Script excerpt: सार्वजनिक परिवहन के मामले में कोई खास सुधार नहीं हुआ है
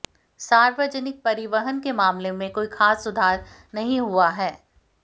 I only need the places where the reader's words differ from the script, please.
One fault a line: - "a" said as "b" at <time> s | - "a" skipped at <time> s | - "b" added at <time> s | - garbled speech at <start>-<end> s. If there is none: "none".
none